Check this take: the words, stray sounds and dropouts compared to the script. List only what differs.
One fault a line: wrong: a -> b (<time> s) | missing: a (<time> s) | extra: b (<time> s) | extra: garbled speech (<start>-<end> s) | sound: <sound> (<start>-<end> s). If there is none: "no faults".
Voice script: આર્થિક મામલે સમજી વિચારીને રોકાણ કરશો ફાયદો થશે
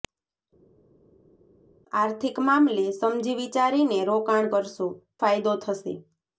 no faults